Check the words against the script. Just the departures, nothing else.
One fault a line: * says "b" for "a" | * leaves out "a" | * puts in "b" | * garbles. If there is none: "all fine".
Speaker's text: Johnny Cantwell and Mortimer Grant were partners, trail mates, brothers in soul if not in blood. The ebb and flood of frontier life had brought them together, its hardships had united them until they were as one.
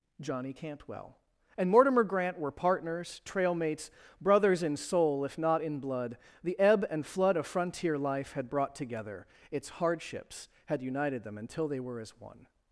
* leaves out "them"